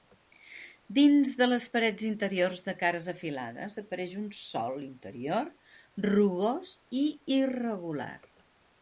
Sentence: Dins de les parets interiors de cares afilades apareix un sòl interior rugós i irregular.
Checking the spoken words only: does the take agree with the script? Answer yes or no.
yes